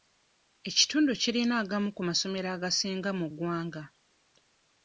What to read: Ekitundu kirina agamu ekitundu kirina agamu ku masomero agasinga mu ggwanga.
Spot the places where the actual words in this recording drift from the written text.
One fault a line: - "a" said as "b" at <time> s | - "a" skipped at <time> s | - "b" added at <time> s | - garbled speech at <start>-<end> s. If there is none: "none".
- "ekitundu kirina agamu" skipped at 1.9 s